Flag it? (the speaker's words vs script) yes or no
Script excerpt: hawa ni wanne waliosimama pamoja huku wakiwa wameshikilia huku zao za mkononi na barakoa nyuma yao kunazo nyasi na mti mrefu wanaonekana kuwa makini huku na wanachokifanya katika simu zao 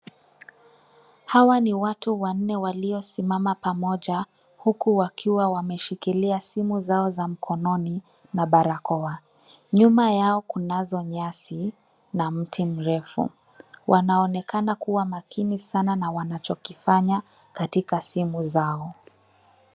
yes